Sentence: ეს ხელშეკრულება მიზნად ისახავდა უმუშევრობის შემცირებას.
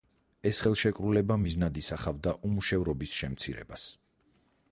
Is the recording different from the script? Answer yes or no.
no